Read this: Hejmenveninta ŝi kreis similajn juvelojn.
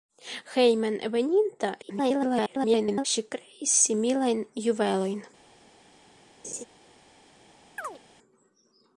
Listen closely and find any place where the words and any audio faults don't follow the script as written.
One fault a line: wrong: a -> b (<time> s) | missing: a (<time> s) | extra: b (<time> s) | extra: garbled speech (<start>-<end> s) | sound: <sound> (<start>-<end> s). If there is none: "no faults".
extra: garbled speech (1.8-3.0 s)
sound: laugh (6.4-6.6 s)
sound: chirp (7.8-8.0 s)